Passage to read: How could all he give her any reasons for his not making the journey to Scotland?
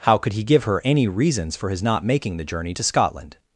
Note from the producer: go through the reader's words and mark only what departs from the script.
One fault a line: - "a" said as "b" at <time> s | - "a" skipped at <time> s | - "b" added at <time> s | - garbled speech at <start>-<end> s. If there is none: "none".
- "all" skipped at 0.3 s